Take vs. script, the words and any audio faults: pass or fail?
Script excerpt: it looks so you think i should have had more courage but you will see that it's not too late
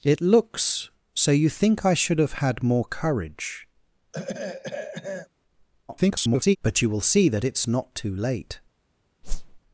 fail